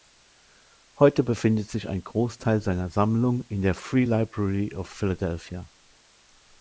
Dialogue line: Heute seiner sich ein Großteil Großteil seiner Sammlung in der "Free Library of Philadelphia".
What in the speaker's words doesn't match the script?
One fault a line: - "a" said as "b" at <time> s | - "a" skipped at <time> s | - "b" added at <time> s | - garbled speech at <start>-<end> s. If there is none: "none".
- "seiner" said as "befindet" at 1.2 s
- "Großteil" skipped at 2.6 s